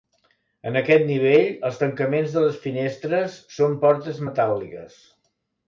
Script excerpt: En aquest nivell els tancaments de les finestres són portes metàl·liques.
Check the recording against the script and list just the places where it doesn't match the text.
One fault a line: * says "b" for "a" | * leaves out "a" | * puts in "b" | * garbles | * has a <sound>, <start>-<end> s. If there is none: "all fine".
all fine